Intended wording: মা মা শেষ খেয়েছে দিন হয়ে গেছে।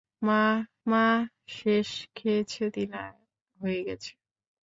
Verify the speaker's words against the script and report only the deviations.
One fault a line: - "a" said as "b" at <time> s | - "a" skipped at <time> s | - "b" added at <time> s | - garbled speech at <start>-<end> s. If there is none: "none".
none